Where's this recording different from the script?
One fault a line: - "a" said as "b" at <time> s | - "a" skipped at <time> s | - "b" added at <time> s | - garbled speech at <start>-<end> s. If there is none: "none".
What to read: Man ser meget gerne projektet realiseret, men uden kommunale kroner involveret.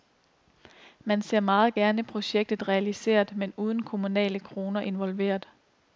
none